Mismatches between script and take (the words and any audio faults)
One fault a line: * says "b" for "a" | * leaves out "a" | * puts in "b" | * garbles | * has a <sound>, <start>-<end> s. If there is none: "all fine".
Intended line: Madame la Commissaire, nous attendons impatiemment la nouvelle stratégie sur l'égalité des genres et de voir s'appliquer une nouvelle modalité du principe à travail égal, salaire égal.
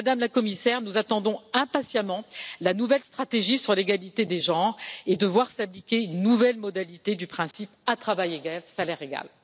* has a dropout, 7.5-7.5 s